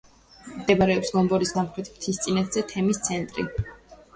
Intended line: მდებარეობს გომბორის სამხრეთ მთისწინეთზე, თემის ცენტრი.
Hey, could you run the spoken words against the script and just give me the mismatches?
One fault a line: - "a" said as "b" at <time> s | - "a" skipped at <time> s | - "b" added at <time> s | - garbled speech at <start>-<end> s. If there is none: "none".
none